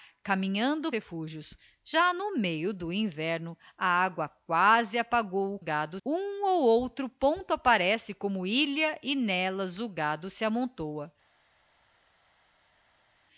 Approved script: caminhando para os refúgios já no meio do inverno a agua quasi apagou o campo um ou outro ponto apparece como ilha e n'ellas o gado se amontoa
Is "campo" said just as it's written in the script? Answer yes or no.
no